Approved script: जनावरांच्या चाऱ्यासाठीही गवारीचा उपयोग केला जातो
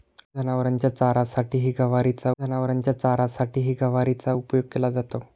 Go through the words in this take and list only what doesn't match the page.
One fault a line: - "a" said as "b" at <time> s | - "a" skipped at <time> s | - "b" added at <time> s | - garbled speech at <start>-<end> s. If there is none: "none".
- "जनावरांच्या चाऱ्यासाठीही गवारीचा" added at 2.4 s